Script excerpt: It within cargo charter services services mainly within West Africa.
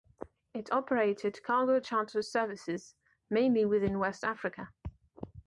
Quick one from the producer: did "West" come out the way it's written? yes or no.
yes